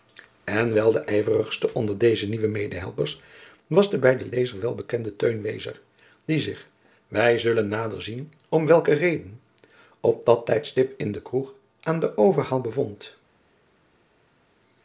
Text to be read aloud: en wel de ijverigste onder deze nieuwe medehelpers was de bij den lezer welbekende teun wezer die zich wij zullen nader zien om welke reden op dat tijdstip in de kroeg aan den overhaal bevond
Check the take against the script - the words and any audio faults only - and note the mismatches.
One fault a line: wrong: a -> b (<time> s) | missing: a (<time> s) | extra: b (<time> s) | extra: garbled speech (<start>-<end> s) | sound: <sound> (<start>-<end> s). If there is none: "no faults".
no faults